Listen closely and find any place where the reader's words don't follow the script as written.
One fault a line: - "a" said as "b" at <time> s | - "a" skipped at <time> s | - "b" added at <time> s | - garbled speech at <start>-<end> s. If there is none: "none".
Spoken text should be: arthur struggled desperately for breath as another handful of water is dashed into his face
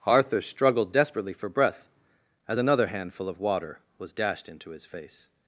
- "is" said as "was" at 4.0 s